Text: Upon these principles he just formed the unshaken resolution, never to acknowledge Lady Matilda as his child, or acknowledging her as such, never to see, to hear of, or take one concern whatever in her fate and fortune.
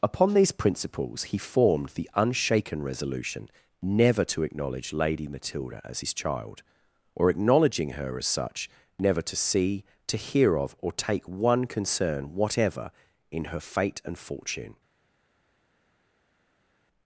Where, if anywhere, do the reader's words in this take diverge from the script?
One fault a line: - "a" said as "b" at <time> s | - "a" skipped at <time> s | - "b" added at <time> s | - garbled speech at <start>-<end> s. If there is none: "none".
- "just" skipped at 1.4 s